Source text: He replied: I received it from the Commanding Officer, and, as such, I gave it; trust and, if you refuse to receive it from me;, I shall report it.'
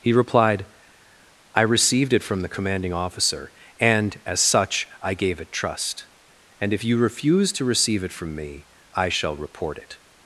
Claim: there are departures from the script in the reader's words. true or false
false